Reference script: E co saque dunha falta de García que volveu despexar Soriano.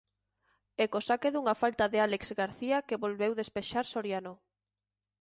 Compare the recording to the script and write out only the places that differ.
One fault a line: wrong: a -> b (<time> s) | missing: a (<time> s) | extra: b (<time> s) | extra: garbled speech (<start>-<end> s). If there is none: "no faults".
extra: Álex (2.0 s)